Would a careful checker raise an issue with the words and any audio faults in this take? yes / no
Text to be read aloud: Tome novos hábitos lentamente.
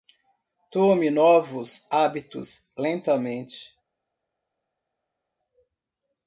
no